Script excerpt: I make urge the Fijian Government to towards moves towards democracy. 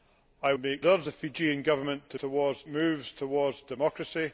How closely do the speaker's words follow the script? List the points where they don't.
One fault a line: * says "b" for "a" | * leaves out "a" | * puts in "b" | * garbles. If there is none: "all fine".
all fine